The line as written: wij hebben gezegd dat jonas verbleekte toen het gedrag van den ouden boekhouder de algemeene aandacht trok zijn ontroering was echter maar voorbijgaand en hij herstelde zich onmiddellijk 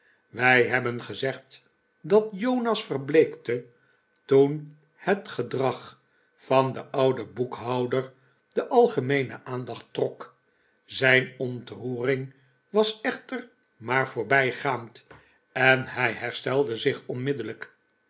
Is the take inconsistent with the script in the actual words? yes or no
no